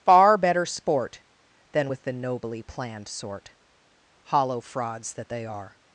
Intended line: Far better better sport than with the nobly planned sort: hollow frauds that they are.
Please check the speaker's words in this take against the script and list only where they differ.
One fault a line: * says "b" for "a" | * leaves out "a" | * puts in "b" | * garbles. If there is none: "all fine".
* leaves out "better"